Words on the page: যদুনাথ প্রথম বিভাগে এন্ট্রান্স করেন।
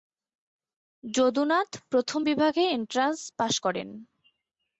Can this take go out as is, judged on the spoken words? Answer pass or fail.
fail